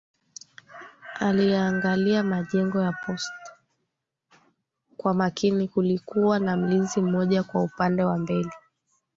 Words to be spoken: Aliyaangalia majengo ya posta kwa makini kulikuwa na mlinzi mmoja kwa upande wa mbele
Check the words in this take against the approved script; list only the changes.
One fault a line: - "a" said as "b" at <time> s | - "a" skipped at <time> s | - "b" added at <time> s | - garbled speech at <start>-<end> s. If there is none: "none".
none